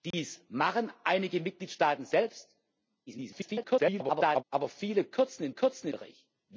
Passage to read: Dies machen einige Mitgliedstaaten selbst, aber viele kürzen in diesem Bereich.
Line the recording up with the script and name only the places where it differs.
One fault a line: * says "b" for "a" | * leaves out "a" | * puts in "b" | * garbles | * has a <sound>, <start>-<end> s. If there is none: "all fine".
* has a dropout, 0.1-0.1 s
* garbles
* says "kürzen" for "diesem"